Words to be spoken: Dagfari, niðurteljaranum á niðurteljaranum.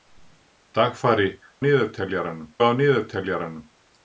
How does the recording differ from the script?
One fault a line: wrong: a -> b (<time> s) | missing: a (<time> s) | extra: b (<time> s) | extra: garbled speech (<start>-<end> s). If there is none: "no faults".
no faults